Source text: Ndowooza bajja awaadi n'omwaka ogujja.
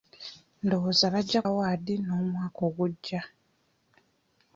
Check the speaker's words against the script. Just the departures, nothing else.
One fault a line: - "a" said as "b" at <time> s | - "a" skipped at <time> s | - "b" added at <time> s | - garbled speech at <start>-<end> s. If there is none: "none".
none